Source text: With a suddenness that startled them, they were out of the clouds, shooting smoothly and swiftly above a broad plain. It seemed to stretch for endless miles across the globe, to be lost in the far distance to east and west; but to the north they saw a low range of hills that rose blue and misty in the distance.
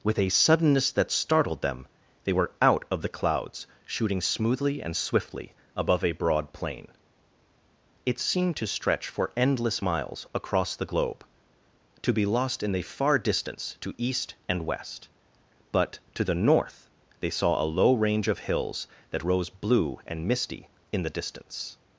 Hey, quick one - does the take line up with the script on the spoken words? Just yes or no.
yes